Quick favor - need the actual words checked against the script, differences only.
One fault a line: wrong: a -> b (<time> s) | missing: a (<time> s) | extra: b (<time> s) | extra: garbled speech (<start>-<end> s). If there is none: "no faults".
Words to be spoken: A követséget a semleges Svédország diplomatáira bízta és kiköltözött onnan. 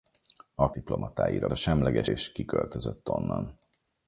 wrong: követséget -> diplomatáira (0.7 s)
missing: Svédország diplomatáira bízta (2.1 s)